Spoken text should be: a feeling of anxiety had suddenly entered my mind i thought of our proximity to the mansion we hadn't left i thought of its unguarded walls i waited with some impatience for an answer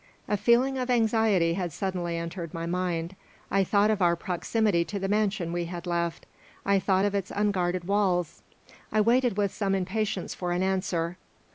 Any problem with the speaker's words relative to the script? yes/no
yes